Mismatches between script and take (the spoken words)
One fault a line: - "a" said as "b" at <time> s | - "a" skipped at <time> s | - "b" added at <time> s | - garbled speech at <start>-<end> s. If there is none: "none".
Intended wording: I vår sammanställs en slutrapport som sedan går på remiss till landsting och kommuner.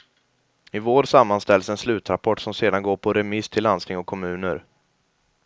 none